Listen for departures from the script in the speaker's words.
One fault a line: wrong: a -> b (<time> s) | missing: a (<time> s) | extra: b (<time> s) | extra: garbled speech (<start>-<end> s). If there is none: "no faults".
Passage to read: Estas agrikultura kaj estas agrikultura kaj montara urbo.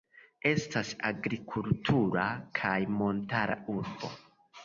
missing: estas agrikultura kaj (2.7 s)